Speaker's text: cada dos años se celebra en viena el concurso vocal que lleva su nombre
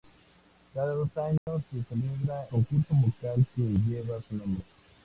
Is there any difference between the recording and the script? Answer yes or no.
yes